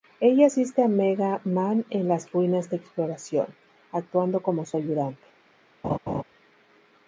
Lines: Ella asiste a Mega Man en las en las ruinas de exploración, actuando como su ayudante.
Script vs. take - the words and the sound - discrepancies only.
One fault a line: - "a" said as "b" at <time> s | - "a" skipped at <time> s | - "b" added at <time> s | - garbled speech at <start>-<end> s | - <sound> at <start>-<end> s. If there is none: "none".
- "en las" skipped at 2.3 s
- laugh at 5.8-6.2 s